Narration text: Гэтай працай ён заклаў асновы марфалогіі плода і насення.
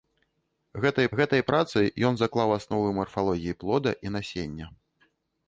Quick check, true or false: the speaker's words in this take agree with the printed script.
false